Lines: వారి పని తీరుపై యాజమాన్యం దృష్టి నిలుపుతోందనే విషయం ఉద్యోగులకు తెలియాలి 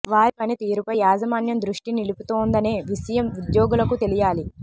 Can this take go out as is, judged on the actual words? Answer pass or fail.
pass